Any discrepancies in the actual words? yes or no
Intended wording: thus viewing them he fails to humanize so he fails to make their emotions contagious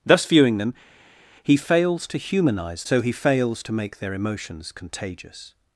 no